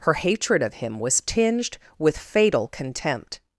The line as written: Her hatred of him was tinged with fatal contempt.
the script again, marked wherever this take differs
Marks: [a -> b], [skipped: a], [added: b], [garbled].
Her hatred of him was tinged with fatal contempt.